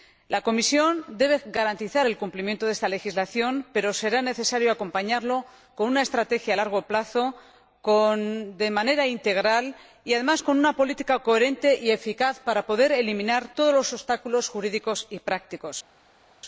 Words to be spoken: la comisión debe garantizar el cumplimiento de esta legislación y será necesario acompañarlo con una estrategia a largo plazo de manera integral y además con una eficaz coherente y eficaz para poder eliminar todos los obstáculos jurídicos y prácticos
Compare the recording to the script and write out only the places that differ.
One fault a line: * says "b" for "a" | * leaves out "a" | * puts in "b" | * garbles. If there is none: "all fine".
* says "pero" for "y"
* says "política" for "eficaz"